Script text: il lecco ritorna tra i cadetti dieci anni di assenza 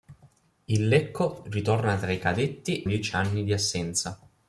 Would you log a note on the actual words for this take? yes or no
no